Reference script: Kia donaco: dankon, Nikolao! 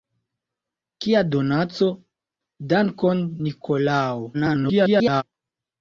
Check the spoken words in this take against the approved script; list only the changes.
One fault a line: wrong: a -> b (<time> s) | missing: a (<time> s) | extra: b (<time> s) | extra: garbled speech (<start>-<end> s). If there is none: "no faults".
extra: garbled speech (4.3-5.2 s)